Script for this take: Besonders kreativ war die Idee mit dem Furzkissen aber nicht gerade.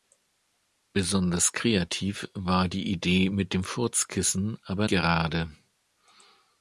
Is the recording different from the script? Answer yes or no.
yes